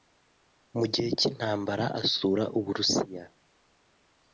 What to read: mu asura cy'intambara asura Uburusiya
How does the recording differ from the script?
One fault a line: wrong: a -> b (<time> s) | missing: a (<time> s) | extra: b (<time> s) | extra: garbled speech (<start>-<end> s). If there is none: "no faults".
wrong: asura -> gihe (0.9 s)